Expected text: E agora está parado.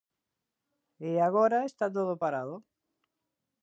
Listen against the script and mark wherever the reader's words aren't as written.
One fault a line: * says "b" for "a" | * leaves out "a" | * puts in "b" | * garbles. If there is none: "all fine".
* puts in "todo"